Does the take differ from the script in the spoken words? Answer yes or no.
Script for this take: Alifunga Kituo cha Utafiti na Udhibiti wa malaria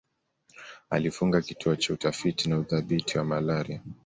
no